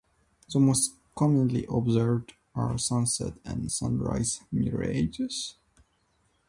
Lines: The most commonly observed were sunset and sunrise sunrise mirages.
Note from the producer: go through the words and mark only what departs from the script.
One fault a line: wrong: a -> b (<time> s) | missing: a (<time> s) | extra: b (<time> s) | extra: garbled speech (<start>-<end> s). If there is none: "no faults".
wrong: were -> are (2.5 s)
missing: sunrise (4.4 s)